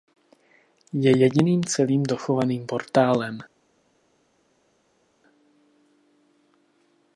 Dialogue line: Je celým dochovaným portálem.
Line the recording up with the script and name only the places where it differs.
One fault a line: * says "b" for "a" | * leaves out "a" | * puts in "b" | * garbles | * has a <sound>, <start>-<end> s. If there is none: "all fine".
* puts in "jediným"